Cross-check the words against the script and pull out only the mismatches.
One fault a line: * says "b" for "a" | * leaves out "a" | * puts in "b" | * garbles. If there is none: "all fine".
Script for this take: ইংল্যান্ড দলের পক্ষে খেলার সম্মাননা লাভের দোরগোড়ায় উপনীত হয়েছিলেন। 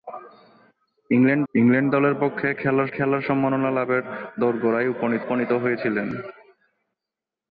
* puts in "ইংল্যান্ড"
* puts in "খেলার"
* puts in "উপনীত"